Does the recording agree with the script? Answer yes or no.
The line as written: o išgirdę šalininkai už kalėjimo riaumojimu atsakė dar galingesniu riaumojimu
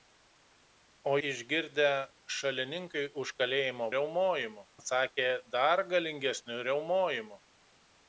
yes